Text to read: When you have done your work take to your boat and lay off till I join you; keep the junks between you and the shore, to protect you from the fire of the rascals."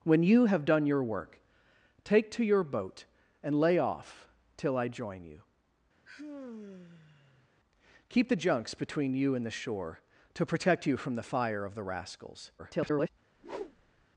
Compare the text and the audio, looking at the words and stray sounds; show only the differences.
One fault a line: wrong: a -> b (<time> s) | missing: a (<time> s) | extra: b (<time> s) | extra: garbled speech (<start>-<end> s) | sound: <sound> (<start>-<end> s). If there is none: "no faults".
sound: sigh (6.0-7.5 s)
extra: garbled speech (12.6-13.1 s)
sound: whoosh (13.3-14.1 s)